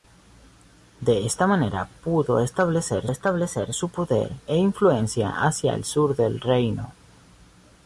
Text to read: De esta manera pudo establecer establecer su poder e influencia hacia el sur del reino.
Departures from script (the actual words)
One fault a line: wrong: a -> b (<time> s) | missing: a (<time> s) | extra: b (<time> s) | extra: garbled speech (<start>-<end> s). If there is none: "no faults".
no faults